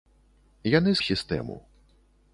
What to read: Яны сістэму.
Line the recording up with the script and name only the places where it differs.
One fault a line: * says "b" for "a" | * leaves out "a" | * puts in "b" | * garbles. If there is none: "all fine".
all fine